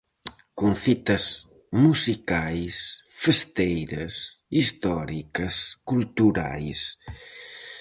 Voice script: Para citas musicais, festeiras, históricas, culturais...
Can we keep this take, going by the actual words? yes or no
no